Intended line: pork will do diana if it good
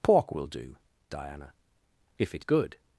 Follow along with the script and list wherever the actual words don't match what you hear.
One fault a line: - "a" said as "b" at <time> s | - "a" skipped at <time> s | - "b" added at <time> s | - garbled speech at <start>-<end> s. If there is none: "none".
none